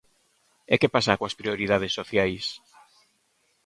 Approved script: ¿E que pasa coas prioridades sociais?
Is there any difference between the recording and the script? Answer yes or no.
no